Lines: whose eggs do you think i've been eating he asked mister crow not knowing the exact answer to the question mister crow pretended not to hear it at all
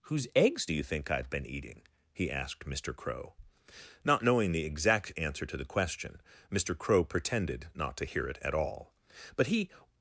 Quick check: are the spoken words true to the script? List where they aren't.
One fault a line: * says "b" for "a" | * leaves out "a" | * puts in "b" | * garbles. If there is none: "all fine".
* puts in "but he"